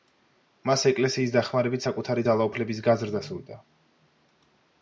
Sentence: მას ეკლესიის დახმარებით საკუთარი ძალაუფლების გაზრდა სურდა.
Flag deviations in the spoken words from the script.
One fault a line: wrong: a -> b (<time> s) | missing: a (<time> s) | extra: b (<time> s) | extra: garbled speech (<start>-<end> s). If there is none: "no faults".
no faults